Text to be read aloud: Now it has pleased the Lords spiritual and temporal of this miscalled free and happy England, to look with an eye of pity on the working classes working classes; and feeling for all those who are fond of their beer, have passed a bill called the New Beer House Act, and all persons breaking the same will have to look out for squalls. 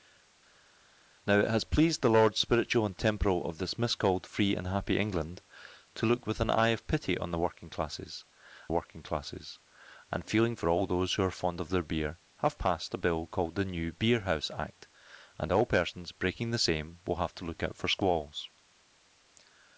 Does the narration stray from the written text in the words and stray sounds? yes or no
no